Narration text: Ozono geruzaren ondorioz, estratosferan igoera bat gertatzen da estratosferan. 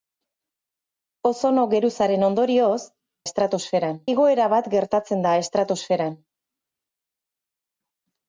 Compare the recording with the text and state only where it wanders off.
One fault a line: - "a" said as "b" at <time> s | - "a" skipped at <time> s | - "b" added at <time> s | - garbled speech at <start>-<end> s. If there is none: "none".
none